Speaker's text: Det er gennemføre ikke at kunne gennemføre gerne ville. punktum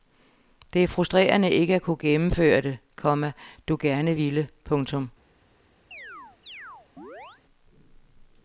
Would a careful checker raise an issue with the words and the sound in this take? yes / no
yes